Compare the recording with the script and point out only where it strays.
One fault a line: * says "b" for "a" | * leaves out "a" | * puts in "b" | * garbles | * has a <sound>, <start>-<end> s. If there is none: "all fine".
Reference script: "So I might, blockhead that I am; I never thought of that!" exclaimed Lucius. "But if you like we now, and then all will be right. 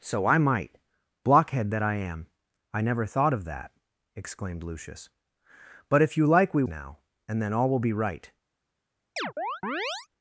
* has a chirp, 9.2-10.1 s